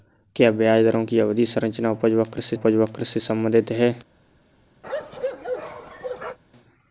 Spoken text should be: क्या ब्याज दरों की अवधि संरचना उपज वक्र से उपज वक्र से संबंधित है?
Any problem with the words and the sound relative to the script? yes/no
yes